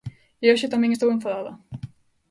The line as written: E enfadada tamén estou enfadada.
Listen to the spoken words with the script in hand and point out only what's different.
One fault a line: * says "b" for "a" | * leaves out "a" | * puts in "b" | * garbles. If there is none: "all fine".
* says "hoxe" for "enfadada"